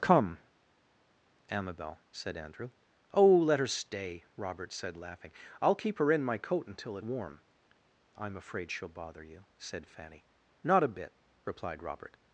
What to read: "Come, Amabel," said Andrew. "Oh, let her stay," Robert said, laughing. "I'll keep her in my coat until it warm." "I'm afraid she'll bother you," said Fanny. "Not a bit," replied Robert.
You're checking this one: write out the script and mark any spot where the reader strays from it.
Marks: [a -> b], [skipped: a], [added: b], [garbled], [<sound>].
"Come, Amabel," said Andrew. "Oh, let her stay," Robert said, laughing. "I'll keep her in my coat until it warm." "I'm afraid she'll bother you," said Fanny. "Not a bit," replied Robert.